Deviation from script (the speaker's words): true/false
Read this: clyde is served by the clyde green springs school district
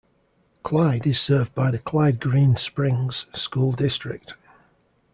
false